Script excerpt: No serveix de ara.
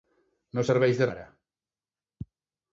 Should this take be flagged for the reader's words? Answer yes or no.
no